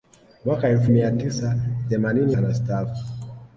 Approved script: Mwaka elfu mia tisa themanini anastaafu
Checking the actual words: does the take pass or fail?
pass